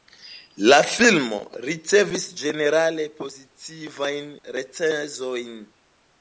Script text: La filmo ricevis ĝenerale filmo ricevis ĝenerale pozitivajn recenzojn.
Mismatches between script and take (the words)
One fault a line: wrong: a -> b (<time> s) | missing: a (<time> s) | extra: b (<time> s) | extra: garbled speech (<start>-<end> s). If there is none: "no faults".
missing: filmo ricevis ĝenerale (3.1 s)